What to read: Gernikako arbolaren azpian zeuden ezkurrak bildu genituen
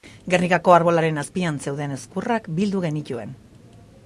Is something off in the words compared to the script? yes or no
no